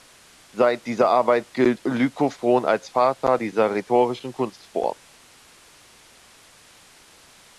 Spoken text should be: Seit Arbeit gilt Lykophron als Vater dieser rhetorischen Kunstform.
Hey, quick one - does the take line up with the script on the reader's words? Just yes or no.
no